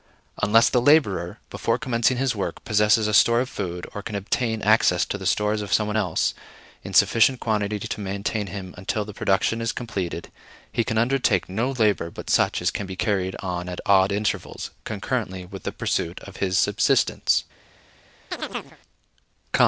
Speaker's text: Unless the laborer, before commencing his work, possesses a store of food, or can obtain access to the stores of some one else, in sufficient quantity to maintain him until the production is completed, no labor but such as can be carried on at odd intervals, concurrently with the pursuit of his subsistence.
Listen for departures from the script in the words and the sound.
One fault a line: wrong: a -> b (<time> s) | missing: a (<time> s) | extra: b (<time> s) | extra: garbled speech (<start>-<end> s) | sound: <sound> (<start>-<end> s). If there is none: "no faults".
extra: he can undertake (10.7 s)
sound: chirp (18.3-18.8 s)